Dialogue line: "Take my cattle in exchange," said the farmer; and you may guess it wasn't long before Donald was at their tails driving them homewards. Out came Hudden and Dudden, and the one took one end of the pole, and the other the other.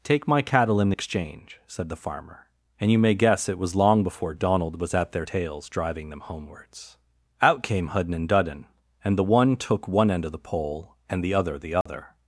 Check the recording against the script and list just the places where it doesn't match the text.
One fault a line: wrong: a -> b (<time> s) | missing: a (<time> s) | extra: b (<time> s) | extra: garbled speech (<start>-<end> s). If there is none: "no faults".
wrong: wasn't -> was (3.6 s)